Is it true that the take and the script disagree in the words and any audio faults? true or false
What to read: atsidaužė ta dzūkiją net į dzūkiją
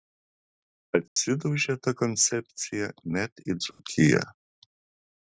true